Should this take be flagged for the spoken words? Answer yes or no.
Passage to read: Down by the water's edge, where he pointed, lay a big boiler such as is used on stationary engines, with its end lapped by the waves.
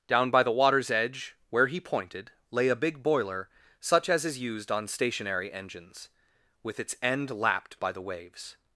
no